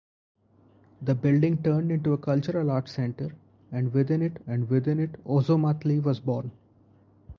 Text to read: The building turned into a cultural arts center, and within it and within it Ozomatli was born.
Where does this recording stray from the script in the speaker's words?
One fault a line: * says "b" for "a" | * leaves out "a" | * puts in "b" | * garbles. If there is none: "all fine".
all fine